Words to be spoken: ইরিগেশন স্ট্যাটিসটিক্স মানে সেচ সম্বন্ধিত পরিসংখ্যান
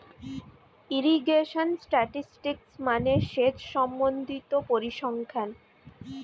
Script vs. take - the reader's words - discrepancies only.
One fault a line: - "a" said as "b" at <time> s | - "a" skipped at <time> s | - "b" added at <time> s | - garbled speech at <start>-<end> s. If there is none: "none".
none